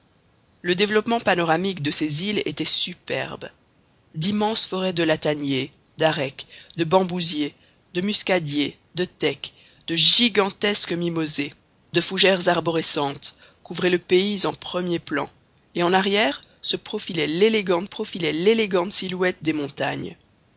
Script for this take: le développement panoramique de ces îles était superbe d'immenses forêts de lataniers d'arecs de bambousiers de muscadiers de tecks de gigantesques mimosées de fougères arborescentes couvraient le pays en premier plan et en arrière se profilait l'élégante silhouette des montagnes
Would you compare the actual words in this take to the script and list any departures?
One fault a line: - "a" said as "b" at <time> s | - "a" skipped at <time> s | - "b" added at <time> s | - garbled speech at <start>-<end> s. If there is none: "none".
- "profilait l'élégante" added at 17.8 s